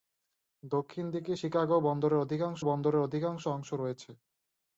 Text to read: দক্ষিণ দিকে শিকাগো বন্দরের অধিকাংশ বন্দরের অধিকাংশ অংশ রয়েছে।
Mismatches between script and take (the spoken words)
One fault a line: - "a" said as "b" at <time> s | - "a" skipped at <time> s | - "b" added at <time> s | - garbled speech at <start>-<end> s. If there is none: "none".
none